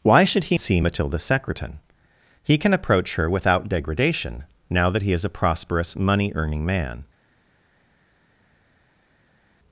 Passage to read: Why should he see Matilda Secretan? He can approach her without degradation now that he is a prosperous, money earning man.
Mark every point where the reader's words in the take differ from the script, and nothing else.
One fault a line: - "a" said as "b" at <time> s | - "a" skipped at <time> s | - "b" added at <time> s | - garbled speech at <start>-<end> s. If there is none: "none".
none